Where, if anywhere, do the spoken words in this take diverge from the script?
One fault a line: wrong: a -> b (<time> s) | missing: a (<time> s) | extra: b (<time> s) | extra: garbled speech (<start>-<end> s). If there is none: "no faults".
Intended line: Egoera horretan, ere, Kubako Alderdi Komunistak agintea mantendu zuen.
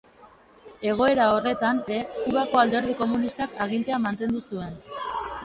no faults